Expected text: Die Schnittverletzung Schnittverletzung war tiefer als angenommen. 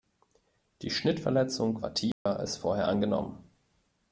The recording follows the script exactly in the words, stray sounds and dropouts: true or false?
false